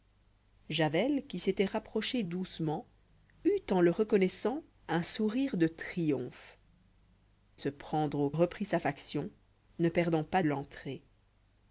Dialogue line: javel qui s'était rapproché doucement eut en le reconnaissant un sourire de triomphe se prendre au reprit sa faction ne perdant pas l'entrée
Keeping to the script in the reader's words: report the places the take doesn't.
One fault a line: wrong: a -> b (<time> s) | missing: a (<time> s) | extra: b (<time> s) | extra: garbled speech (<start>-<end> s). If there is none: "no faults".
no faults